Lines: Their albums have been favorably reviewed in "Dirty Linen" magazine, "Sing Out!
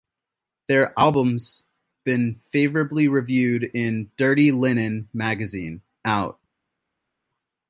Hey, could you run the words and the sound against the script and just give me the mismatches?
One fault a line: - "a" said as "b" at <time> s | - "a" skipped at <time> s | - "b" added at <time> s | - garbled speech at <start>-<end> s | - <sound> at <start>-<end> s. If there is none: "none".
- "have" skipped at 1.6 s
- "Sing" skipped at 5.8 s